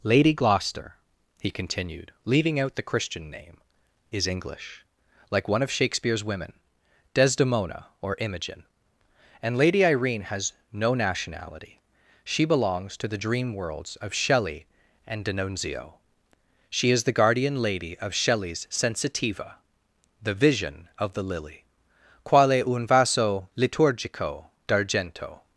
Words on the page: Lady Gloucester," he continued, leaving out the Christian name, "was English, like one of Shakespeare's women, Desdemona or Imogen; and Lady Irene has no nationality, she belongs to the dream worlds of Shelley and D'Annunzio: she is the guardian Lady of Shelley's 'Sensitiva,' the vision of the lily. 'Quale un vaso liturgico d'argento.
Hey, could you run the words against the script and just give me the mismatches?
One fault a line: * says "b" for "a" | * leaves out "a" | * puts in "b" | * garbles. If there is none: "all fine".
* says "is" for "was"